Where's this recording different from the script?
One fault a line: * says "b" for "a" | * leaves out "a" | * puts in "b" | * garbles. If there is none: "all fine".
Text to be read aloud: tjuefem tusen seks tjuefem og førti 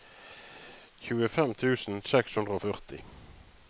* says "hundre" for "tjuefem"